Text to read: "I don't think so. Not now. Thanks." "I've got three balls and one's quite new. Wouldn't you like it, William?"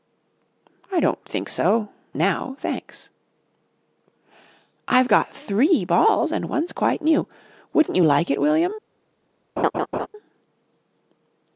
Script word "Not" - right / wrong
wrong